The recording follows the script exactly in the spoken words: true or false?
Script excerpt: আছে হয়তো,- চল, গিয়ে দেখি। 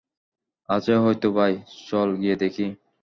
false